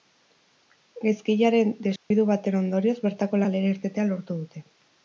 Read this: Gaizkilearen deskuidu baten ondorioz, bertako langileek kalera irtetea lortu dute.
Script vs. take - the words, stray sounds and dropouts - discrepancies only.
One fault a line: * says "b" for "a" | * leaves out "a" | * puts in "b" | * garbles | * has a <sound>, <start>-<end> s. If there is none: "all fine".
* has a dropout, 2.0-2.1 s
* leaves out "langileek"